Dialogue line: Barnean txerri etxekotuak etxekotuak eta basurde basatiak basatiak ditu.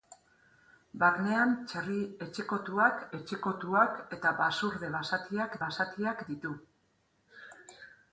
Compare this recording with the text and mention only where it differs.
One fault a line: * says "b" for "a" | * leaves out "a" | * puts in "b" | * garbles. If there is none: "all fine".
all fine